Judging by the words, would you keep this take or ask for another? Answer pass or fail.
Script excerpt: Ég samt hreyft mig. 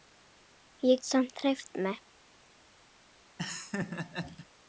pass